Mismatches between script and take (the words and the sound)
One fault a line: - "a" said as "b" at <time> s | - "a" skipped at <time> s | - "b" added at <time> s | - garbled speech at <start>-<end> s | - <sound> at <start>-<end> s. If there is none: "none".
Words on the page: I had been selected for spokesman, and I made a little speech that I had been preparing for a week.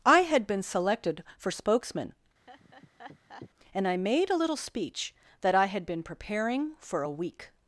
- laugh at 2.5-3.5 s